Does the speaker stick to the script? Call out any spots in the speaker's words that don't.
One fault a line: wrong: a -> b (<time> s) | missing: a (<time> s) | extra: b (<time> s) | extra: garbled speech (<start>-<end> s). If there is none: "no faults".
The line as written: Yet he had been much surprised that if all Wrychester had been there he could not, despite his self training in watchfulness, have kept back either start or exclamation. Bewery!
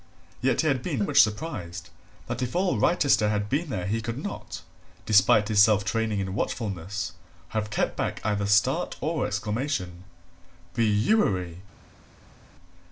no faults